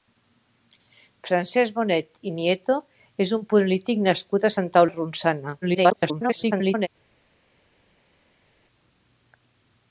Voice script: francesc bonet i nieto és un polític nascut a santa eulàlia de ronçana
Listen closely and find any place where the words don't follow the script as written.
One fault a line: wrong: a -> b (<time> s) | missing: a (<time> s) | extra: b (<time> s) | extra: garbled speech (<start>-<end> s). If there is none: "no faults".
missing: eulàlia (4.9 s)
extra: garbled speech (5.6-6.9 s)